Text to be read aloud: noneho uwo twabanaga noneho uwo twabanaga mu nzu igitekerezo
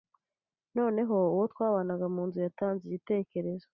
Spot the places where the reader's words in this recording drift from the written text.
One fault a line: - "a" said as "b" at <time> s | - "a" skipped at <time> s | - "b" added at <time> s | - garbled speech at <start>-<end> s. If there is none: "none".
- "noneho uwo twabanaga" skipped at 2.1 s
- "yatanze" added at 2.5 s